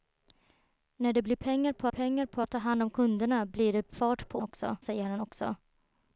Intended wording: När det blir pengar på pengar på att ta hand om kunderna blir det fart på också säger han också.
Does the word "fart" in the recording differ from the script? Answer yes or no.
no